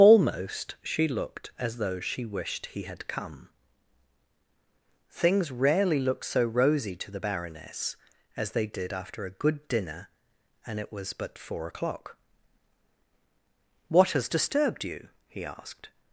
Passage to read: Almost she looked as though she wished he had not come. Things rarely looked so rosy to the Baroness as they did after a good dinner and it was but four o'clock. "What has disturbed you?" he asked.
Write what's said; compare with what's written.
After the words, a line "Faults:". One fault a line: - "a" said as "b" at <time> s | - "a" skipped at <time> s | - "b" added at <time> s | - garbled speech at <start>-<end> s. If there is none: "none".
Almost she looked as though she wished he had come. Things rarely looked so rosy to the Baroness as they did after a good dinner and it was but four o'clock. "What has disturbed you?" he asked.
Faults:
- "not" skipped at 3.1 s